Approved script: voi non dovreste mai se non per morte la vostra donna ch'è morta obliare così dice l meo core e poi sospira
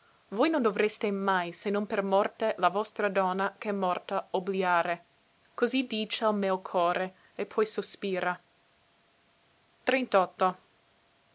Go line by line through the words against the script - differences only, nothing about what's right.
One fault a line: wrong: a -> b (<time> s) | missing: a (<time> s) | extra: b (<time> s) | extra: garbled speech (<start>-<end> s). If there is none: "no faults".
no faults